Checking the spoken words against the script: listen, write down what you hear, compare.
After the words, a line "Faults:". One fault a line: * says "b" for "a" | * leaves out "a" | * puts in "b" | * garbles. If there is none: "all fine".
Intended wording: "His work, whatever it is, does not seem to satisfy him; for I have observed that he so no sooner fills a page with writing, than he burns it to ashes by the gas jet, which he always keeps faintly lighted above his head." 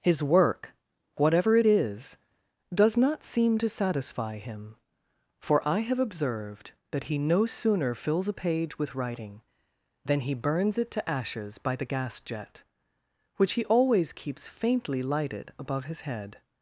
"His work, whatever it is, does not seem to satisfy him; for I have observed that he no sooner fills a page with writing, than he burns it to ashes by the gas jet, which he always keeps faintly lighted above his head."
Faults:
* leaves out "so"